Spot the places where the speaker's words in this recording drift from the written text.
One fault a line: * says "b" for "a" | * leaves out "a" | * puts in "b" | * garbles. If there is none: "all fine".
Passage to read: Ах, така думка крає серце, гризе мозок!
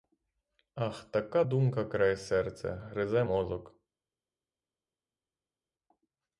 all fine